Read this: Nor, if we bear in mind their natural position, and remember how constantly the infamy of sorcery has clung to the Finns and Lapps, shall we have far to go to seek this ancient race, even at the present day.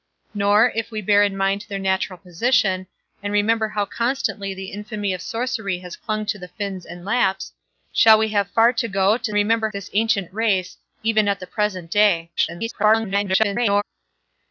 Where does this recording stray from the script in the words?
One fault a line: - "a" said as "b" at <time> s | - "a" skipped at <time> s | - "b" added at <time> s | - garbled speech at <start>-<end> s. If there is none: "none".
- "seek" said as "remember" at 9.3 s
- garbled speech at 12.4-13.8 s